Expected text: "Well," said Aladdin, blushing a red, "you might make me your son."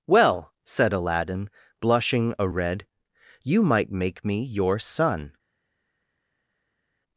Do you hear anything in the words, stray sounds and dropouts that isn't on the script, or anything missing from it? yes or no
no